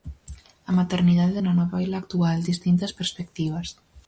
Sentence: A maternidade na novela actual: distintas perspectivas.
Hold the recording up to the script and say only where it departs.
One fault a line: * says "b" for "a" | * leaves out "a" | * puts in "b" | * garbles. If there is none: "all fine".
all fine